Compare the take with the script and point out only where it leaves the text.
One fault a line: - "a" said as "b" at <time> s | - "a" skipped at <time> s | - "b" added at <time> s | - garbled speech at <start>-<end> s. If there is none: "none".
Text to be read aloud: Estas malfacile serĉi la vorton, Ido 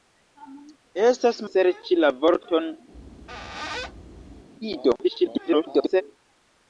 - "malfacile" skipped at 1.4 s
- garbled speech at 5.0-6.0 s